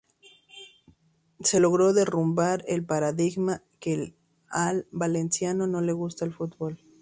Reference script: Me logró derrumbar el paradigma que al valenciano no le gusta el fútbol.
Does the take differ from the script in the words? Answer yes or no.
yes